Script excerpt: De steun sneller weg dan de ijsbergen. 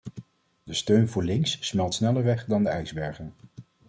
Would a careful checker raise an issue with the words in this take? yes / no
yes